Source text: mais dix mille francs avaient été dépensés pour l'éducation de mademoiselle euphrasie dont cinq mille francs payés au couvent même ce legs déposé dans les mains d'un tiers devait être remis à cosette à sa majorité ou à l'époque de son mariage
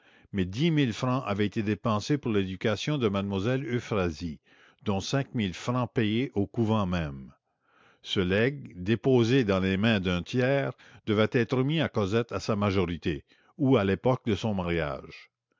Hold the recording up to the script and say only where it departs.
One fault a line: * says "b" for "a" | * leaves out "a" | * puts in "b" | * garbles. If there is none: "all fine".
all fine